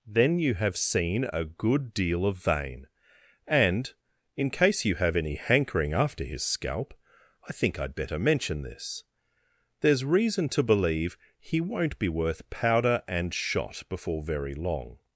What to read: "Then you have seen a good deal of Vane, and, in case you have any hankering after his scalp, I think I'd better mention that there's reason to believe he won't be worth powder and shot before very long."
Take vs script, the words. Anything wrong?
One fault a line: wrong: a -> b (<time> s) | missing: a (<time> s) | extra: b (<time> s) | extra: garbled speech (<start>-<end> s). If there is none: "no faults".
wrong: that -> this (8.6 s)